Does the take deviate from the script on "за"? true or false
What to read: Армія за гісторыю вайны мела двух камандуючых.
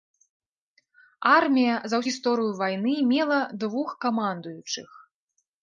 false